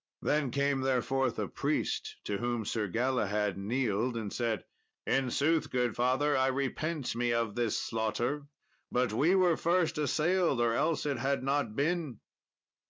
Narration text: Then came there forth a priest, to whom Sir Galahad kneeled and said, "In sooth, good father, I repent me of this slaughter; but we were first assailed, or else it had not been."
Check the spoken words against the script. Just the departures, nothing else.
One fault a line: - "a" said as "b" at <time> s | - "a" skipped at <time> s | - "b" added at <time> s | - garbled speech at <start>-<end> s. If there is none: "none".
none